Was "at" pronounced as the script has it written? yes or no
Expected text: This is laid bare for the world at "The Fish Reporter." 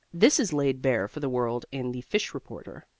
no